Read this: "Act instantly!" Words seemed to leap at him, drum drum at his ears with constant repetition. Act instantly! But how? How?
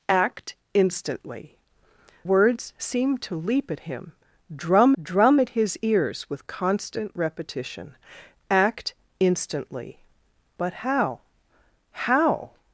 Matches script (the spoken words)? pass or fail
pass